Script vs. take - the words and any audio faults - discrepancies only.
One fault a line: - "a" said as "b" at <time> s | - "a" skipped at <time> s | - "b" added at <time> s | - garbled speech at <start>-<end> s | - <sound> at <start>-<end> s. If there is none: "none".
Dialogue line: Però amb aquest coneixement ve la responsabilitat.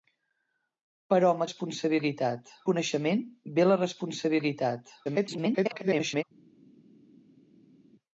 - "aquest" said as "responsabilitat" at 1.4 s
- garbled speech at 5.0-6.2 s